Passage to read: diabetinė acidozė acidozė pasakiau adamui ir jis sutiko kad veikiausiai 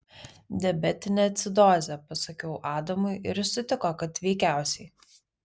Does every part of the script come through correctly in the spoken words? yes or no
no